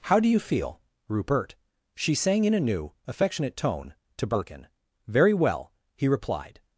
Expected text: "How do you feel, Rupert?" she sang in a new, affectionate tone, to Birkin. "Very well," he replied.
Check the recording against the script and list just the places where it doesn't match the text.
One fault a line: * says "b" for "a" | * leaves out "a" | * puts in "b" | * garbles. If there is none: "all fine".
all fine